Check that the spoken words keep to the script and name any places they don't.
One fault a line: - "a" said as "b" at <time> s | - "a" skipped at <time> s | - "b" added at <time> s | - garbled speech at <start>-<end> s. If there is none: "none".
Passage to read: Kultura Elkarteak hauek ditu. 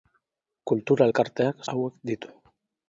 none